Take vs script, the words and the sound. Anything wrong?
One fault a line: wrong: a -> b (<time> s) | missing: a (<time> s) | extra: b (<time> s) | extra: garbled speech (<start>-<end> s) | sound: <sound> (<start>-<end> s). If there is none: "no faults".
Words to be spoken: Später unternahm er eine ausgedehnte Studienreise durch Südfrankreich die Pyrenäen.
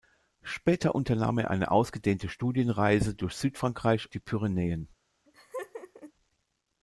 sound: laugh (5.3-6.1 s)